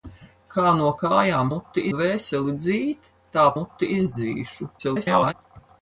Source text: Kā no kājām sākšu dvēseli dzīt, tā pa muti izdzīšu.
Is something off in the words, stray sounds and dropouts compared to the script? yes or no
yes